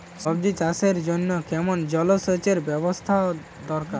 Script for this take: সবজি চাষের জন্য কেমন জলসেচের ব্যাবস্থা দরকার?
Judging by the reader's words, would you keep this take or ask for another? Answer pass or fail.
pass